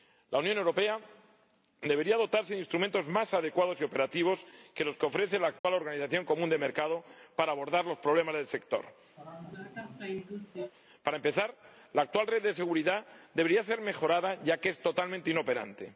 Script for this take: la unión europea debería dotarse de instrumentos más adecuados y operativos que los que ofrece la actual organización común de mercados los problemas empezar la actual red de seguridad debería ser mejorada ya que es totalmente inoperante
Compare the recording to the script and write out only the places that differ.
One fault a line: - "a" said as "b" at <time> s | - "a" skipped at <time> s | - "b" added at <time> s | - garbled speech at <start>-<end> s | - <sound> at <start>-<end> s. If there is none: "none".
- dropout at 5.6-5.6 s
- "para abordar" added at 7.4 s
- "del sector para" added at 8.4 s
- sneeze at 9.2-10.7 s